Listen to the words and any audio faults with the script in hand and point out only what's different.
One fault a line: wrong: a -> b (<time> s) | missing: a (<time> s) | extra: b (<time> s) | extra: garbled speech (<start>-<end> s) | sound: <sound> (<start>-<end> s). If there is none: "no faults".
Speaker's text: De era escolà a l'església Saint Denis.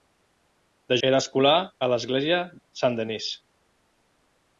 no faults